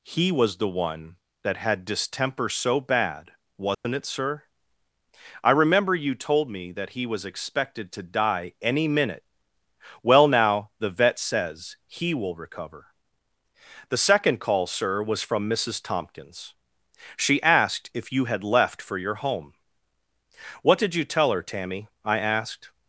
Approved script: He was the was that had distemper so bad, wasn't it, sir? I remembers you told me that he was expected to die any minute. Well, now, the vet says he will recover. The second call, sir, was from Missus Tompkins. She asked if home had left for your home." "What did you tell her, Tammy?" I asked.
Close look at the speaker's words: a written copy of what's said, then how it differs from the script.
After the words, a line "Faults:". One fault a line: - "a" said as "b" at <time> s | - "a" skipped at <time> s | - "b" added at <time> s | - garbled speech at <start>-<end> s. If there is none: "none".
He was the one that had distemper so bad, wasn't it, sir? I remember you told me that he was expected to die any minute. Well, now, the vet says he will recover. The second call, sir, was from Missus Tompkins. She asked if you had left for your home." "What did you tell her, Tammy?" I asked.
Faults:
- "was" said as "one" at 0.7 s
- "remembers" said as "remember" at 5.5 s
- "home" said as "you" at 18.1 s